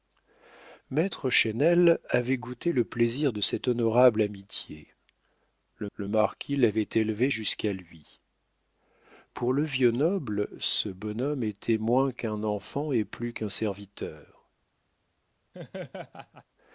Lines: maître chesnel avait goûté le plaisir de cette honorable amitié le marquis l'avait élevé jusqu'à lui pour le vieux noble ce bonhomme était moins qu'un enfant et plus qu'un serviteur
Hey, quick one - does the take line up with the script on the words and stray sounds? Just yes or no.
no